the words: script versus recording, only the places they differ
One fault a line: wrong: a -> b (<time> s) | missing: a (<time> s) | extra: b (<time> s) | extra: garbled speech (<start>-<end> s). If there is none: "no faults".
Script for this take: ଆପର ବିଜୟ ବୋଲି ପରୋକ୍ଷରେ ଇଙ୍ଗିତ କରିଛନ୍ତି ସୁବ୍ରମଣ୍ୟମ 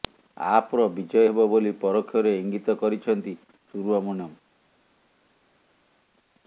extra: ହେବ (1.2 s)